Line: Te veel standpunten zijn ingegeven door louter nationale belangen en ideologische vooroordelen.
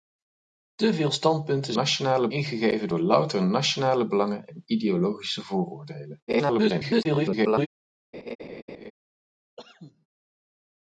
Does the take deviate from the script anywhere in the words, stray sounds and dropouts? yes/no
yes